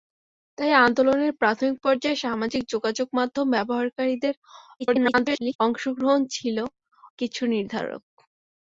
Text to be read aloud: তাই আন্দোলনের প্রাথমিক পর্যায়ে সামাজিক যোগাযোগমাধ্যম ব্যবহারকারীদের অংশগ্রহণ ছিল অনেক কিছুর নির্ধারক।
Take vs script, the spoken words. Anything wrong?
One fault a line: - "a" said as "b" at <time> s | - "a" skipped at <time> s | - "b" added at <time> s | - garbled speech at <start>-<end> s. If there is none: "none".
- garbled speech at 4.8-5.6 s
- "অনেক" skipped at 6.6 s